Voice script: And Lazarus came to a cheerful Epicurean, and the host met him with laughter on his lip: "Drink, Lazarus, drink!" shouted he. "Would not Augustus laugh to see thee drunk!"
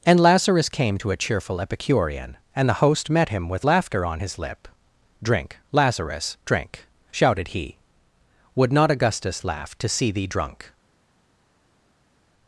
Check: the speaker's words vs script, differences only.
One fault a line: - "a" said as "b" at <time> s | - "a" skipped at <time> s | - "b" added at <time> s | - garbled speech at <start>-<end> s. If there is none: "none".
none